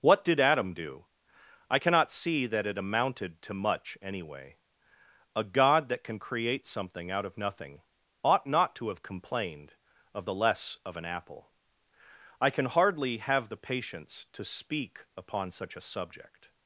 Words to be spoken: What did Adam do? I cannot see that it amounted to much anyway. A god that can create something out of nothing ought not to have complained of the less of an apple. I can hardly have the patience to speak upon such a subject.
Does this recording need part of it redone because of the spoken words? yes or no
no